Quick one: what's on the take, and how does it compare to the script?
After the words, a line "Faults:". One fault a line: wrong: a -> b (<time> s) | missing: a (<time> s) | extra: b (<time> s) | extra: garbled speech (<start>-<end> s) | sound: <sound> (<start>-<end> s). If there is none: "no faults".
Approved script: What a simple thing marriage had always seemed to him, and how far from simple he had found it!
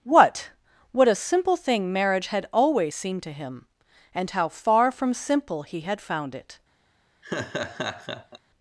What what a simple thing marriage had always seemed to him, and how far from simple he had found it!
Faults:
extra: what (0.9 s)
sound: laugh (7.2-8.4 s)